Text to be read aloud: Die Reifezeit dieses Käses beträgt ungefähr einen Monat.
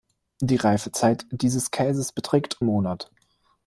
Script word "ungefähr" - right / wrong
wrong